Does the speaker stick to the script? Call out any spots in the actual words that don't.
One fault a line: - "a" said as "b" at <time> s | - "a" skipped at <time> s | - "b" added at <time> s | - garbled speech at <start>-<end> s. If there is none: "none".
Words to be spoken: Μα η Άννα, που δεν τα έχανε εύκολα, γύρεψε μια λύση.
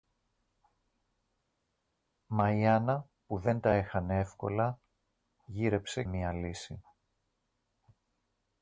none